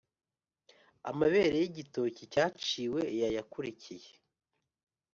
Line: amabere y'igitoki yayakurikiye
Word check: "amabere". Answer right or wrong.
right